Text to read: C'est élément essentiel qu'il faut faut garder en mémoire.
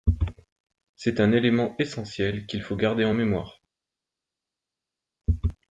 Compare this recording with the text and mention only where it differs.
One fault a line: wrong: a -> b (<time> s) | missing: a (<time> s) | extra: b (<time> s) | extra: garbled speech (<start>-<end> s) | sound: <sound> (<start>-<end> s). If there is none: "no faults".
extra: un (1.2 s)
missing: faut (2.8 s)